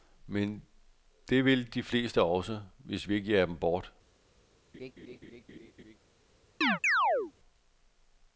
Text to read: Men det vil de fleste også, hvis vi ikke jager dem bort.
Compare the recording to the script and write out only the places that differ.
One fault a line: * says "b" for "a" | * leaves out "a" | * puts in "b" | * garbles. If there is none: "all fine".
all fine